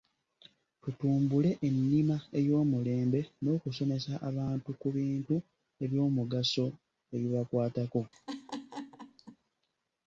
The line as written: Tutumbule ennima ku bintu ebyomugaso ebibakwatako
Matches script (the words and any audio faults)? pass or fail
fail